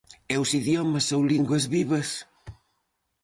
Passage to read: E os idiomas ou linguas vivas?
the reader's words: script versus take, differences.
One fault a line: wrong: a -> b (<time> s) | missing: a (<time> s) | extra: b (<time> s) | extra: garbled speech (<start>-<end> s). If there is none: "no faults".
no faults